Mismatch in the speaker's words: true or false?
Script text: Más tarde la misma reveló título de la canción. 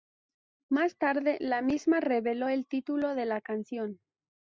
true